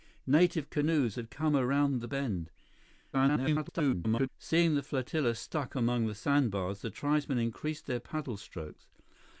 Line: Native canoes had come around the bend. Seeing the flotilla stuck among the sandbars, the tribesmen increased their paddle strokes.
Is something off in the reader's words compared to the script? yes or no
yes